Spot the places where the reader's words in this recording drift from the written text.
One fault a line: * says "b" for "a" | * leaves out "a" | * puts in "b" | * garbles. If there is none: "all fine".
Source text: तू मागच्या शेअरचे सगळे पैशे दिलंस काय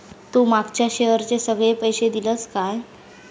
all fine